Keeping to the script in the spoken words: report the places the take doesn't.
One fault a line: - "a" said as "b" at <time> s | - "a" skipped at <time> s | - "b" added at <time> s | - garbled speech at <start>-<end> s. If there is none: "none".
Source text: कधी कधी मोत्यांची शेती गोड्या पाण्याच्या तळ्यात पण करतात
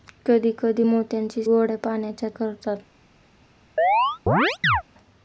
- "शेती" skipped at 1.4 s
- "तळ्यात पण" skipped at 2.3 s